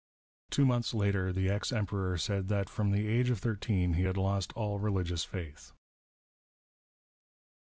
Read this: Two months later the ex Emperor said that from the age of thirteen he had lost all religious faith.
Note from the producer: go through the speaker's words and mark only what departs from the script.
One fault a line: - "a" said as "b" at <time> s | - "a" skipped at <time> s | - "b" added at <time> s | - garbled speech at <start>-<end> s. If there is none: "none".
none